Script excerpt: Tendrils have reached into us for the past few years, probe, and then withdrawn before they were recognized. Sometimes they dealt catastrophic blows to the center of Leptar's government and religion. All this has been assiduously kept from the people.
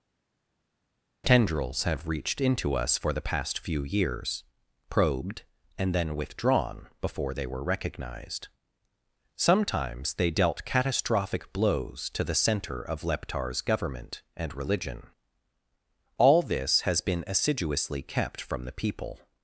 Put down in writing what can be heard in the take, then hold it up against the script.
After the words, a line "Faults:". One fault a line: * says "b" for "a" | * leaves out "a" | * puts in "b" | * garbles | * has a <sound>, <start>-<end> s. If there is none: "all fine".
Tendrils have reached into us for the past few years, probed, and then withdrawn before they were recognized. Sometimes they dealt catastrophic blows to the center of Leptar's government and religion. All this has been assiduously kept from the people.
Faults:
* says "probed" for "probe"